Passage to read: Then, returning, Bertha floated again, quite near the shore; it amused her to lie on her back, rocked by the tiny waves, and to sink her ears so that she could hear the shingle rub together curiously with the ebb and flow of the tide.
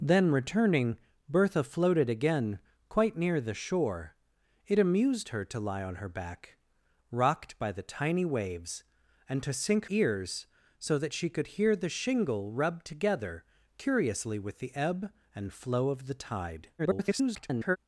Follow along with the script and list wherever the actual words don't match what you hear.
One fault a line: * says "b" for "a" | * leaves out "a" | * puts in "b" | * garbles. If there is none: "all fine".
* leaves out "her"
* garbles